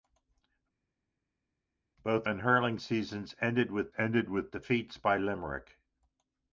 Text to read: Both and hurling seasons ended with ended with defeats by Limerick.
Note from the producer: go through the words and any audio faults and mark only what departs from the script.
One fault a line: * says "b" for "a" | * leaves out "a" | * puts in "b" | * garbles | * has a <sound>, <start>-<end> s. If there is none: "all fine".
all fine